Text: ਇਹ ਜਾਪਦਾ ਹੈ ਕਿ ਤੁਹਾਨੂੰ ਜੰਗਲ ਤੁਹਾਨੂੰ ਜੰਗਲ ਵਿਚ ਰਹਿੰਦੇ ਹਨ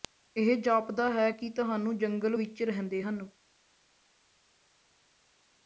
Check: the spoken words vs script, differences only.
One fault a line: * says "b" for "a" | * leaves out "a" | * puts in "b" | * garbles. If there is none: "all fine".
* leaves out "ਤੁਹਾਨੂੰ ਜੰਗਲ"